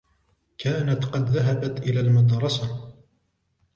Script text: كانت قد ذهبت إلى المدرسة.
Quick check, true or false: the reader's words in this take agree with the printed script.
true